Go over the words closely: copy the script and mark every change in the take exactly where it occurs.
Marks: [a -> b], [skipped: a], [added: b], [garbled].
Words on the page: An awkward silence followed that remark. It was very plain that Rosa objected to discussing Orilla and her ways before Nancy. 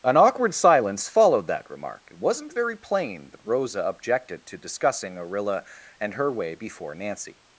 An awkward silence followed that remark. It [was -> wasn't] very plain that Rosa objected to discussing Orilla and her [ways -> way] before Nancy.